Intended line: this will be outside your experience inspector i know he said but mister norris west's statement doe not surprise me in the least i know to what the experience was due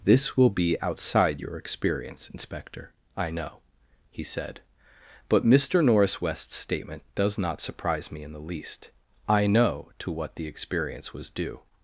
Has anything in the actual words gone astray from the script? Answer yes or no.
yes